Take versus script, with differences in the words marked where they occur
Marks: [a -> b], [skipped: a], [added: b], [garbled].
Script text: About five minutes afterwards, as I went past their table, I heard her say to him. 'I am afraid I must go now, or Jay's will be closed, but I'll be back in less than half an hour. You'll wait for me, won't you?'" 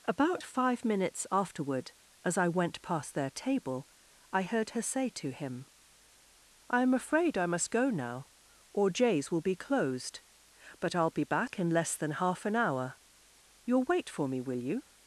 About five minutes [afterwards, -> afterward] as I went past their table, I heard her say to him. 'I am afraid I must go now, or Jay's will be closed, but I'll be back in less than half an hour. You'll wait for me, [won't -> will] you?'"